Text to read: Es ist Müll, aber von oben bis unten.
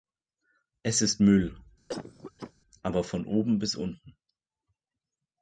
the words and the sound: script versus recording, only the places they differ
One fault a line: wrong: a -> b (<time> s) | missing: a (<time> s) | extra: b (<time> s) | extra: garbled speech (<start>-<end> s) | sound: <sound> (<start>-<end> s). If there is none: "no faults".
sound: cough (1.9-2.5 s)